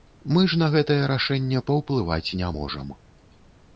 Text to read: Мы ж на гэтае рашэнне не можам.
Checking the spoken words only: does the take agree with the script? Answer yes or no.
no